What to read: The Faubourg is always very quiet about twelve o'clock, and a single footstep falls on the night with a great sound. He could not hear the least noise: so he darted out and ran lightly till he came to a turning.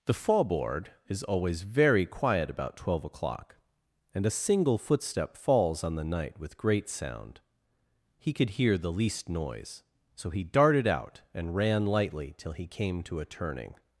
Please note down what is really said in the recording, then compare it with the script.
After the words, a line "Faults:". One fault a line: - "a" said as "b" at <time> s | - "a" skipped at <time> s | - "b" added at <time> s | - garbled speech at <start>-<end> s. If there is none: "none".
The Faubourg is always very quiet about twelve o'clock, and a single footstep falls on the night with great sound. He could hear the least noise: so he darted out and ran lightly till he came to a turning.
Faults:
- "a" skipped at 6.6 s
- "not" skipped at 8.5 s